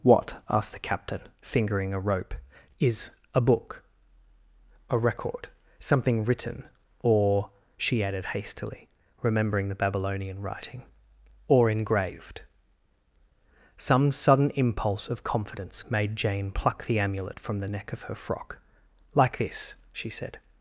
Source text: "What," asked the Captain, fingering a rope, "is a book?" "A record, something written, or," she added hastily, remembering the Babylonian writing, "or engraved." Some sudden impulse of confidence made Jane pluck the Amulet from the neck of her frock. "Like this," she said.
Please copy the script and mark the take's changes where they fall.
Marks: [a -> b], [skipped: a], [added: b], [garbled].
"What," asked the Captain, fingering a rope, "is a book?" "A record, something written, or," she added hastily, remembering the Babylonian writing, "or engraved." Some sudden impulse of confidence made Jane pluck the Amulet from the neck of her frock. "Like this," she said.